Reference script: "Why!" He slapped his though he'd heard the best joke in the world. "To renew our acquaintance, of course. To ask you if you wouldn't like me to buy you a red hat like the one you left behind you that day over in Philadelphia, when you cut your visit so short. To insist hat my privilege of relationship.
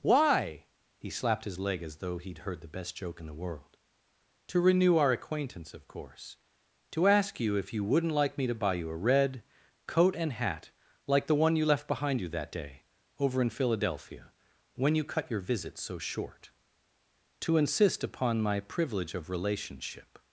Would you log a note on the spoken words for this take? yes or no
yes